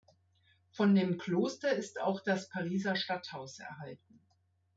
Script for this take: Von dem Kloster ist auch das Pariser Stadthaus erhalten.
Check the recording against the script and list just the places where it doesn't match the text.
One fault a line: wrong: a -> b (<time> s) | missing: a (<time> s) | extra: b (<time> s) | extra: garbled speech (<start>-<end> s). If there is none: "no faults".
no faults